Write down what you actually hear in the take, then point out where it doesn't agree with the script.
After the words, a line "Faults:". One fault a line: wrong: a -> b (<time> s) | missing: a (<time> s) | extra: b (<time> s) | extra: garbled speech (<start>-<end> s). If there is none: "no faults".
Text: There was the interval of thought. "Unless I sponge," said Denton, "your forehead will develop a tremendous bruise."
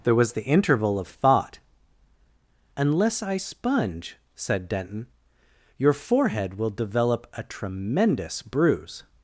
There was the interval of thought. "Unless I sponge," said Denton, "your forehead will develop a tremendous bruise."
Faults:
no faults